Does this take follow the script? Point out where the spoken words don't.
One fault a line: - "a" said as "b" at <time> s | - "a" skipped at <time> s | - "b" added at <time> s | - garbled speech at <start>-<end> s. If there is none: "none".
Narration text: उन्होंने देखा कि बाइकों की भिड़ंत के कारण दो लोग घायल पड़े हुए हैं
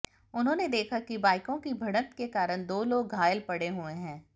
none